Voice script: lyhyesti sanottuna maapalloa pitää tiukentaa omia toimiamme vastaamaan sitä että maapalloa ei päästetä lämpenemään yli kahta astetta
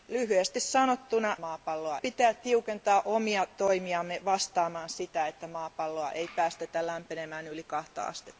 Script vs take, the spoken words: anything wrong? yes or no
no